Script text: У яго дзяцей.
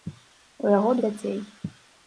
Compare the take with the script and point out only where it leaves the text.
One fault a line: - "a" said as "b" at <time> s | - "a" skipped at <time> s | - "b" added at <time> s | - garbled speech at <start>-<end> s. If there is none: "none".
none